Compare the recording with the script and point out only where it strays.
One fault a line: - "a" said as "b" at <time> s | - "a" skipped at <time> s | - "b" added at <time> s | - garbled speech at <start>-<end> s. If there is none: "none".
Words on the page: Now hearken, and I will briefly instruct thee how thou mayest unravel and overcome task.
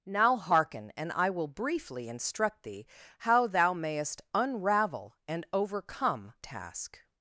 none